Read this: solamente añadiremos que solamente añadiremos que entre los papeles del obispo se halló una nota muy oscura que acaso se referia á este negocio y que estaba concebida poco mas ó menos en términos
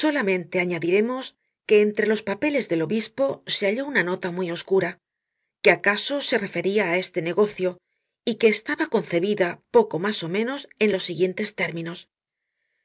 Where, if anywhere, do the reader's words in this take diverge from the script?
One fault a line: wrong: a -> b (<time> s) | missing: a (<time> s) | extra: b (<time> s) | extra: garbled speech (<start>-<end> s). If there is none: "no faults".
missing: solamente añadiremos que (1.8 s)
extra: los siguientes (10.9 s)